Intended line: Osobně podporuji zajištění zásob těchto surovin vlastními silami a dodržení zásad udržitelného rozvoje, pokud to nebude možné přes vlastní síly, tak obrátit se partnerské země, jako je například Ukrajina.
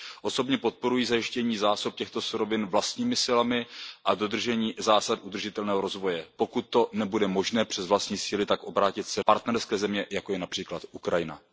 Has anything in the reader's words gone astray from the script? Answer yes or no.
no